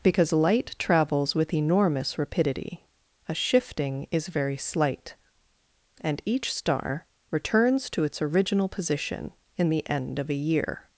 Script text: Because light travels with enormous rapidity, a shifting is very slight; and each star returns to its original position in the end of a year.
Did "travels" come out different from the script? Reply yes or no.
no